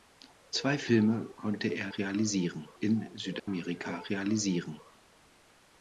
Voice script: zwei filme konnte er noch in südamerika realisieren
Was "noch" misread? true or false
true